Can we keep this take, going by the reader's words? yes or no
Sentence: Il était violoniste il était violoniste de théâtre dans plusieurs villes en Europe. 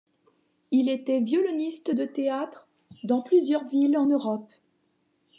no